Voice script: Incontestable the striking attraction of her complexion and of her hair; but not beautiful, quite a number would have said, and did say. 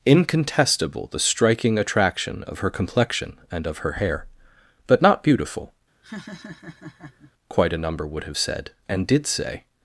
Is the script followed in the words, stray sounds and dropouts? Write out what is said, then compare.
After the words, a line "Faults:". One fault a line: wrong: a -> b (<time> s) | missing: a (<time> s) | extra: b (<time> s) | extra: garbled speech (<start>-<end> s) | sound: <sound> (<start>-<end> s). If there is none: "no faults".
Incontestable the striking attraction of her complexion and of her hair; but not beautiful, quite a number would have said, and did say.
Faults:
sound: laugh (6.0-7.3 s)